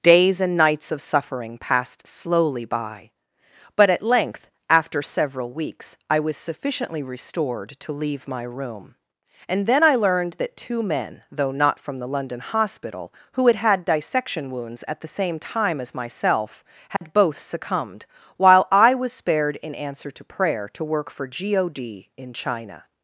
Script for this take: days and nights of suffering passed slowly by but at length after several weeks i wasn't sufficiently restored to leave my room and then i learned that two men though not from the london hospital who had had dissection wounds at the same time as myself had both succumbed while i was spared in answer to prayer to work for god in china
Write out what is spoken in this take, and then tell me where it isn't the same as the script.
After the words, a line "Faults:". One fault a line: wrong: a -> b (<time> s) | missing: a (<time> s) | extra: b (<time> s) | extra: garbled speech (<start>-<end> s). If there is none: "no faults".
days and nights of suffering passed slowly by but at length after several weeks i was sufficiently restored to leave my room and then i learned that two men though not from the london hospital who had had dissection wounds at the same time as myself had both succumbed while i was spared in answer to prayer to work for god in china
Faults:
wrong: wasn't -> was (6.2 s)